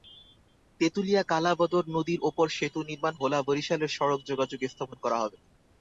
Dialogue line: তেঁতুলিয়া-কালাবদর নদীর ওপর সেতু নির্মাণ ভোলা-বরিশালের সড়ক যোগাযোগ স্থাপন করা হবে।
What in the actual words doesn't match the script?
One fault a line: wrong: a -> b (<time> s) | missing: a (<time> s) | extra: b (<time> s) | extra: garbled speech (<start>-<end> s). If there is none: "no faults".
no faults